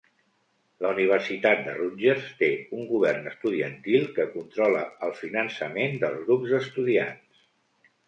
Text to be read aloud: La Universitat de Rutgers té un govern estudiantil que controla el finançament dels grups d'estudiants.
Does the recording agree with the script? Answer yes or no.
yes